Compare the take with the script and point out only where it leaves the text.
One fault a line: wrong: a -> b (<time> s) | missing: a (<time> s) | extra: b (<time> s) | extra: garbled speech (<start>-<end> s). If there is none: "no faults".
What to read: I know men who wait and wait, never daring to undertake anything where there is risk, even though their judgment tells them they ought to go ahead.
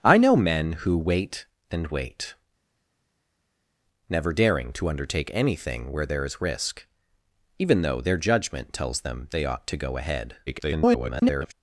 extra: garbled speech (10.5-11.5 s)